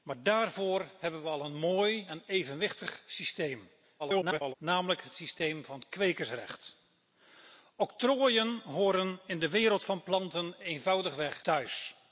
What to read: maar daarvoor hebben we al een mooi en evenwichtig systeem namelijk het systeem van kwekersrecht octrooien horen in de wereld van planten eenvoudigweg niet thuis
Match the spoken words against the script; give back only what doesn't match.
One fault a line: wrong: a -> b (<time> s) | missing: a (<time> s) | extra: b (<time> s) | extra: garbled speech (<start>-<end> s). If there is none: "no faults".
extra: garbled speech (4.0-4.5 s)
missing: niet (11.5 s)